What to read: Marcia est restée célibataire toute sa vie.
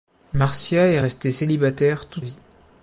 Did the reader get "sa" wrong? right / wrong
wrong